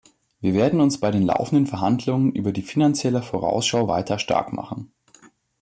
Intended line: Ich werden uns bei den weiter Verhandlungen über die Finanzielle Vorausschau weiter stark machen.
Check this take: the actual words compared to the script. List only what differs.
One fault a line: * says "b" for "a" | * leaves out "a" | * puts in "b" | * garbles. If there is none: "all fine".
* says "Wir" for "Ich"
* says "laufenden" for "weiter"